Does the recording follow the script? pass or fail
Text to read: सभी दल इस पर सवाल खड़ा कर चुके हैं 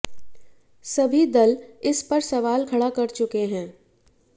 pass